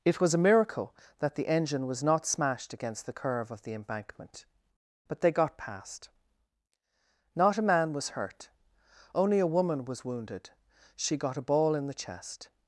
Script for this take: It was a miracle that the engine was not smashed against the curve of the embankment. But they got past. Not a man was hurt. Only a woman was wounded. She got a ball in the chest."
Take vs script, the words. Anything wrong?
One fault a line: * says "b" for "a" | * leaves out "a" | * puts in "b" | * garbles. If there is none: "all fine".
all fine